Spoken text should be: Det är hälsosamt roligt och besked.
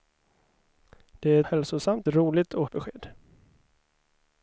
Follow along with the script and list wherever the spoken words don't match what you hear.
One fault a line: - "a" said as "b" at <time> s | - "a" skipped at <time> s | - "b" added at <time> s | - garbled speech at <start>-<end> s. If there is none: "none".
none